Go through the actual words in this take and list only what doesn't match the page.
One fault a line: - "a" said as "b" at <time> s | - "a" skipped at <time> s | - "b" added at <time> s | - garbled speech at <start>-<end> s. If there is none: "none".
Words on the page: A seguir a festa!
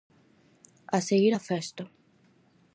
none